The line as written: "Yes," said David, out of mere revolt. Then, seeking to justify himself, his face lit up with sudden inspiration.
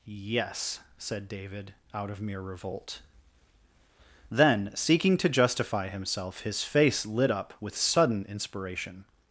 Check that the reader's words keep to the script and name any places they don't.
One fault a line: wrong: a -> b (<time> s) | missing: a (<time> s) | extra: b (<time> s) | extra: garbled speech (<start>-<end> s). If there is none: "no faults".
no faults